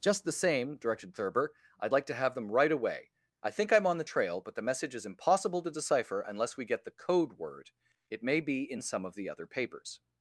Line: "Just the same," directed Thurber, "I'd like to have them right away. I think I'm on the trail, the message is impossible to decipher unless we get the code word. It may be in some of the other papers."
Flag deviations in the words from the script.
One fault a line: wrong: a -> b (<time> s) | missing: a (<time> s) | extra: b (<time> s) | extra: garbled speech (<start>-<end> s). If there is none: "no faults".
extra: but (4.4 s)